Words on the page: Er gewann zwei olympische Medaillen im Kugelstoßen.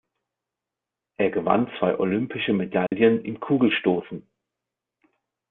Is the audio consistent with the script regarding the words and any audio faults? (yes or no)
no